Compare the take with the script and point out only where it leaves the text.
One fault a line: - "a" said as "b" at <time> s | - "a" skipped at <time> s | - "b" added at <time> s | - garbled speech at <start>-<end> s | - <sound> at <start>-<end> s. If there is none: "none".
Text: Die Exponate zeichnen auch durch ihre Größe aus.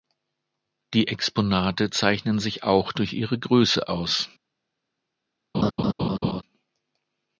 - "sich" added at 2.4 s
- laugh at 5.5-6.4 s